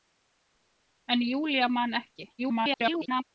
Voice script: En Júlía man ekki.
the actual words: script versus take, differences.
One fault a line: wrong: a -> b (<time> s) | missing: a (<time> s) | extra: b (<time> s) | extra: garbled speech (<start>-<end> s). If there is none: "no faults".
extra: garbled speech (2.4-3.2 s)